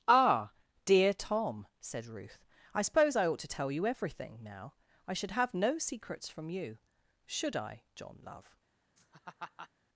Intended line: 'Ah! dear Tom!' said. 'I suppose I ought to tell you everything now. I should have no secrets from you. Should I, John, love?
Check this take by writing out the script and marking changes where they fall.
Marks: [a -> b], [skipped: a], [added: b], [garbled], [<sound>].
'Ah! dear Tom!' said. [added: Ruth] 'I suppose I ought to tell you everything now. I should have no secrets from you. Should I, John, love? [laugh]